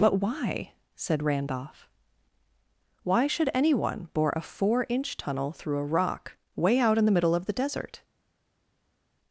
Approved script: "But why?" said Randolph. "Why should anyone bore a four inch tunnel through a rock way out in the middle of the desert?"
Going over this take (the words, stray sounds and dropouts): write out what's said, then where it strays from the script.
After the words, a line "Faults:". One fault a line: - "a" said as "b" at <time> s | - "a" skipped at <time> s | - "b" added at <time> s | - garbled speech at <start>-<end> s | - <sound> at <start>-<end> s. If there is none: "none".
"But why?" said Randolph. "Why should anyone bore a four inch tunnel through a rock way out in the middle of the desert?"
Faults:
none